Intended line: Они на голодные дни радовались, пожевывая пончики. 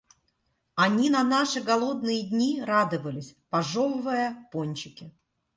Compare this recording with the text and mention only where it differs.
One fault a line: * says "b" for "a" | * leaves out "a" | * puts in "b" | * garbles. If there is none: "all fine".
* puts in "наши"